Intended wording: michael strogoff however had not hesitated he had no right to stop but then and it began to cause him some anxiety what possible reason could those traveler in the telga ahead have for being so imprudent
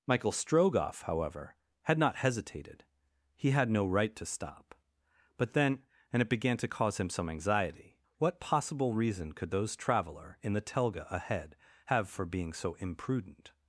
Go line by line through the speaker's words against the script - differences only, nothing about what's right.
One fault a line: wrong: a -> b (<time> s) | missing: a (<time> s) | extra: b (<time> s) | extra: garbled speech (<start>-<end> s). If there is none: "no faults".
no faults